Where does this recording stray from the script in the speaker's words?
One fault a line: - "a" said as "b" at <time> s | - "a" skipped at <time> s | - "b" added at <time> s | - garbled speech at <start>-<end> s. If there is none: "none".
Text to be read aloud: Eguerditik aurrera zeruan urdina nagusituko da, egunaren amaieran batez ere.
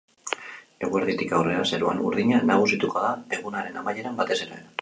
none